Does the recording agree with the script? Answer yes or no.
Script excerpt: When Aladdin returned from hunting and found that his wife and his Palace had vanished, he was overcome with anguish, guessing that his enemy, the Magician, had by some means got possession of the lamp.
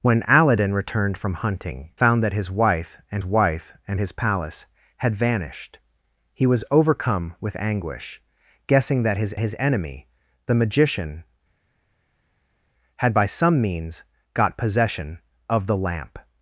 no